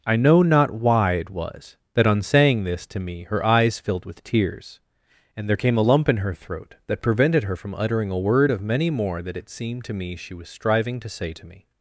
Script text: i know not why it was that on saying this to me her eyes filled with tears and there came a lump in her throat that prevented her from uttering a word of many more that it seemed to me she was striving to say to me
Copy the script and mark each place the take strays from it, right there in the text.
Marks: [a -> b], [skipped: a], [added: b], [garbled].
i know not why it was that on saying this to me her eyes filled with tears and there came a lump in her throat that prevented her from uttering a word of many more that it seemed to me she was striving to say to me